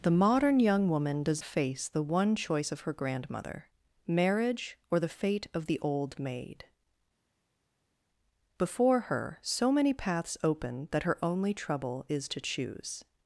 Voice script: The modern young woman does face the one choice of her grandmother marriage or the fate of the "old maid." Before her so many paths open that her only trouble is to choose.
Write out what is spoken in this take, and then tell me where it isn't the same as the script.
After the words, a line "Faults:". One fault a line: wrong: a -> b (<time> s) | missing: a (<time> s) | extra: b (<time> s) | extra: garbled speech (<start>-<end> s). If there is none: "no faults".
The modern young woman does face the one choice of her grandmother marriage or the fate of the "old maid." Before her so many paths open that her only trouble is to choose.
Faults:
no faults